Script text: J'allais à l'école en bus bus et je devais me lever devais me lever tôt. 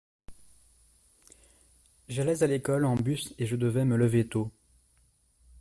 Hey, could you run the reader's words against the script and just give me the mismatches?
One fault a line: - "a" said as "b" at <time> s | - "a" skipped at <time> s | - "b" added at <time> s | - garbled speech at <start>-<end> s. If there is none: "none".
- "bus" skipped at 3.3 s
- "devais me lever" skipped at 4.3 s